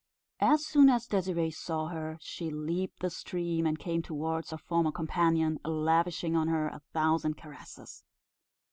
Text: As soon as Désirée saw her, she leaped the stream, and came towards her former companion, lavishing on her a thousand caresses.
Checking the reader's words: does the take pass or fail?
pass